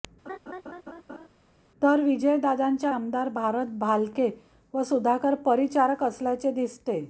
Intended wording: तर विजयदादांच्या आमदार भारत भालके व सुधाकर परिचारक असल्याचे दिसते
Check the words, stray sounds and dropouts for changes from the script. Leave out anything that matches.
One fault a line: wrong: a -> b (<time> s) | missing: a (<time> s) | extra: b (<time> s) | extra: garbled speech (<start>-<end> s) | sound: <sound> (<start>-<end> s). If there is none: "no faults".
sound: laugh (0.3-1.3 s)